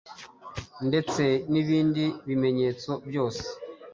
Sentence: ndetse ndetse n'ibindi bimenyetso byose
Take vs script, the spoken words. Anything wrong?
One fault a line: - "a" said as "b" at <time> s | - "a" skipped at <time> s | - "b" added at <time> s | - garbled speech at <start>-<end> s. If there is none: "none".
- "ndetse" skipped at 1.2 s